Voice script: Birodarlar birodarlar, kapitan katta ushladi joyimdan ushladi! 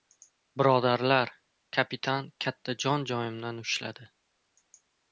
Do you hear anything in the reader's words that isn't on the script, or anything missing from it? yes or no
yes